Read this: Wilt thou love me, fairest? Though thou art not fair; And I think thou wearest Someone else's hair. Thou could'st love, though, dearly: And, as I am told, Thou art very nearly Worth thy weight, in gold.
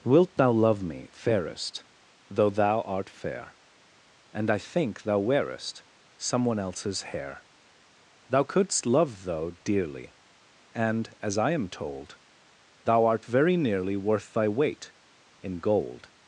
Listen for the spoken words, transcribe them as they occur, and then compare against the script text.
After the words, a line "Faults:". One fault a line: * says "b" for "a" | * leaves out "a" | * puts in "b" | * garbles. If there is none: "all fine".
Wilt thou love me, fairest? Though thou art fair; And I think thou wearest Someone else's hair. Thou could'st love, though, dearly: And, as I am told, Thou art very nearly Worth thy weight, in gold.
Faults:
* leaves out "not"